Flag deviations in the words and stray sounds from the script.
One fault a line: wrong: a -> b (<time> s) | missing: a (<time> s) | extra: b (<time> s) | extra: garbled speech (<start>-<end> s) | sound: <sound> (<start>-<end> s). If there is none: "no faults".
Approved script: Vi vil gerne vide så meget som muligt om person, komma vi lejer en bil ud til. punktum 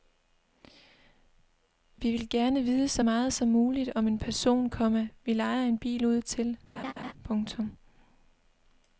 extra: en (4.1 s)
sound: laugh (6.8-7.1 s)